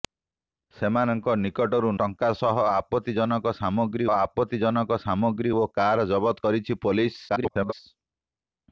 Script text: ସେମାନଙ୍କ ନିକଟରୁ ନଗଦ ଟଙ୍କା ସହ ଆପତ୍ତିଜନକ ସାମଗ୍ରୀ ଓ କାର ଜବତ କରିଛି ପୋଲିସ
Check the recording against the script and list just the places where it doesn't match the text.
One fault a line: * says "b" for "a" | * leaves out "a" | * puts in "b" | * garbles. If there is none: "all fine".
* leaves out "ନଗଦ"
* puts in "ଆପତ୍ତିଜନକ ସାମଗ୍ରୀ"
* garbles